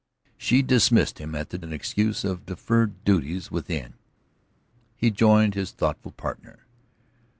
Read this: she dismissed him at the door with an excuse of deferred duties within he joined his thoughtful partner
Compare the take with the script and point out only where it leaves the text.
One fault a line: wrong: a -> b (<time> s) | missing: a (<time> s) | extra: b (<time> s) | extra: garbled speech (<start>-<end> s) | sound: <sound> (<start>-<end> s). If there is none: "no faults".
missing: door with (1.6 s)